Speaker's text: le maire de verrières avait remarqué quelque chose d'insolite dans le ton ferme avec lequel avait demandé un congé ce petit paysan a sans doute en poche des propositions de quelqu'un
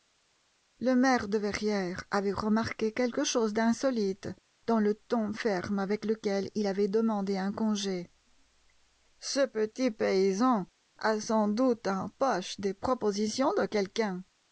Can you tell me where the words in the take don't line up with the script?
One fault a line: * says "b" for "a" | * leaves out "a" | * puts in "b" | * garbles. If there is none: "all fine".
* puts in "il"